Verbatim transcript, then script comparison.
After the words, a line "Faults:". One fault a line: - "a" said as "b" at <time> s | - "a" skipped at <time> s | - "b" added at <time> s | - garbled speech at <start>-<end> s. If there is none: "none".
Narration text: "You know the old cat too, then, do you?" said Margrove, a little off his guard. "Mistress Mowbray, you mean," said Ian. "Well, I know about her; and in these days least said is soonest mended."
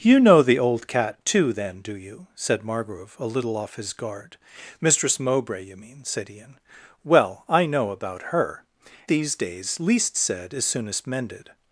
"You know the old cat too, then, do you?" said Margrove, a little off his guard. "Mistress Mowbray, you mean," said Ian. "Well, I know about her; these days least said is soonest mended."
Faults:
- "and in" skipped at 8.6 s